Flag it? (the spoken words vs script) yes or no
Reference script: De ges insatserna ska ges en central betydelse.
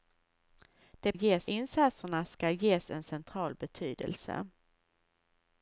no